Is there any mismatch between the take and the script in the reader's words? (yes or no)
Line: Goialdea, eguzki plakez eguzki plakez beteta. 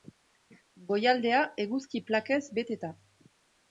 yes